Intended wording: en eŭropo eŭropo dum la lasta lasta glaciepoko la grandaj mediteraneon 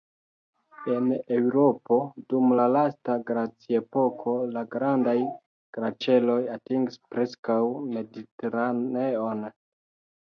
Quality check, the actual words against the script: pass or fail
fail